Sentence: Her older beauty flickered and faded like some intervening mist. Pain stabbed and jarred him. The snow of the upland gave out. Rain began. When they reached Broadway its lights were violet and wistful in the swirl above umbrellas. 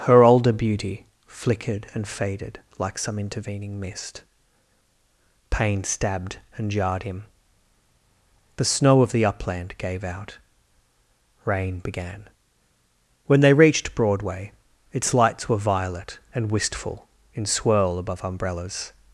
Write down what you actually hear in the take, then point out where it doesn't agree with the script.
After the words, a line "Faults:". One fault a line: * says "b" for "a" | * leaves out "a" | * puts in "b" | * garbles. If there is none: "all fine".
Her older beauty flickered and faded like some intervening mist. Pain stabbed and jarred him. The snow of the upland gave out. Rain began. When they reached Broadway its lights were violet and wistful in swirl above umbrellas.
Faults:
* leaves out "the"